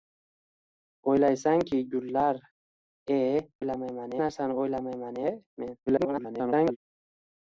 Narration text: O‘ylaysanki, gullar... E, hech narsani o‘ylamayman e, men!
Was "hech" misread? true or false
true